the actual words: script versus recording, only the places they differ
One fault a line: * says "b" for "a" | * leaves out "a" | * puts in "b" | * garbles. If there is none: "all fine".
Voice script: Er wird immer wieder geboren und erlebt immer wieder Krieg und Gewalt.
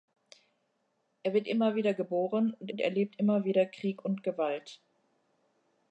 * puts in "und"